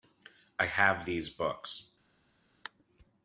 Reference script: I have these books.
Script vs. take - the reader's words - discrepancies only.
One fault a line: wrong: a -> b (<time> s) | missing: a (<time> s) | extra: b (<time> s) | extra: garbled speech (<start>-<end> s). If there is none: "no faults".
no faults